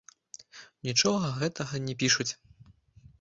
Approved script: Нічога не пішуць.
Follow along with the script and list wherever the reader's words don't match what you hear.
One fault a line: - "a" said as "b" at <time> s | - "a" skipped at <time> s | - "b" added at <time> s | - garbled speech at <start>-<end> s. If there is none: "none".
- "гэтага" added at 1.4 s